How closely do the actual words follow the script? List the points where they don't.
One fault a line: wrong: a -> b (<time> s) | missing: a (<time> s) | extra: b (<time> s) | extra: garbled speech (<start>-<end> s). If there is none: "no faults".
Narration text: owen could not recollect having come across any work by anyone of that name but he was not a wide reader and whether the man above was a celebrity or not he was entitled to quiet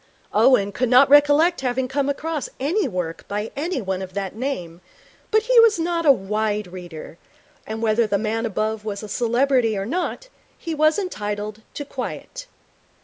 no faults